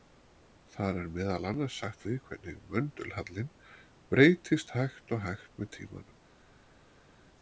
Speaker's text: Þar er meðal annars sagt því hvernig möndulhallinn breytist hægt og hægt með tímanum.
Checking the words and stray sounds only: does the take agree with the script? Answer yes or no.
yes